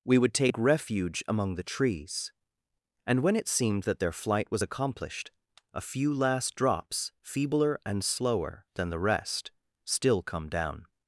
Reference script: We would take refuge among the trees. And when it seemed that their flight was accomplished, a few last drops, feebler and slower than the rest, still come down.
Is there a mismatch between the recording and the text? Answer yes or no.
no